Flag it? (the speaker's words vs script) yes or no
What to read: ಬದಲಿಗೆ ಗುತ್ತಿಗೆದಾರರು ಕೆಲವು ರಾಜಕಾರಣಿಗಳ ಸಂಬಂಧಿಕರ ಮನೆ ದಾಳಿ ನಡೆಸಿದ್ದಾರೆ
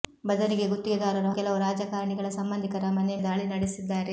no